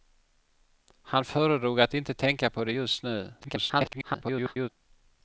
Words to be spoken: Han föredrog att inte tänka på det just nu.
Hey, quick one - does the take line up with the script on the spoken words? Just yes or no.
no